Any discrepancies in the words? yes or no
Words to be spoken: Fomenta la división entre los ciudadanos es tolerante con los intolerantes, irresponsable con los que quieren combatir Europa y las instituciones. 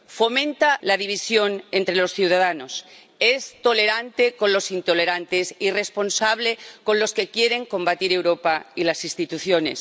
no